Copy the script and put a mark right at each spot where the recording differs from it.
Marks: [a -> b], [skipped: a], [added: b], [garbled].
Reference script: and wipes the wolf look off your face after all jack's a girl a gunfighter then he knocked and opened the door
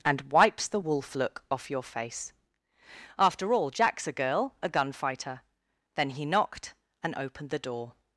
and wipes the wolf look off your face after all jack's a girl a gunfighter then he knocked and opened the door